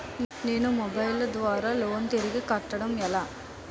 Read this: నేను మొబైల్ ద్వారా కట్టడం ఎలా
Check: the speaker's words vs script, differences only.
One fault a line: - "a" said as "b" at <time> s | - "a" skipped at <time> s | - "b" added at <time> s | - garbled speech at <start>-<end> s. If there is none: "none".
- "లోన్ తిరిగి" added at 1.8 s